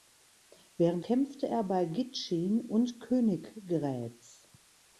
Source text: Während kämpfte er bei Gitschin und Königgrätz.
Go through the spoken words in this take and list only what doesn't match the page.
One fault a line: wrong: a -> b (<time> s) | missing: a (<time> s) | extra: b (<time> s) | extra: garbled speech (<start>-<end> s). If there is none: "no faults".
no faults